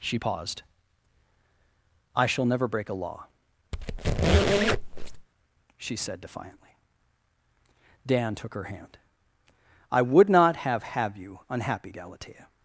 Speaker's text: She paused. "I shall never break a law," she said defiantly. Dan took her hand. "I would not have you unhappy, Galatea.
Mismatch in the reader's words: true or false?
true